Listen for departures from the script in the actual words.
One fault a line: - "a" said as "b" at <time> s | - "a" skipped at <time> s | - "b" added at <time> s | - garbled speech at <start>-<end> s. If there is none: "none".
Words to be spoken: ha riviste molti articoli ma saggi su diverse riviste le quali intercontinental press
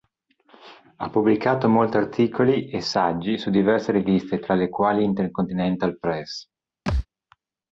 - "riviste" said as "pubblicato" at 1.1 s
- "ma" said as "e" at 2.7 s
- "tra" added at 4.4 s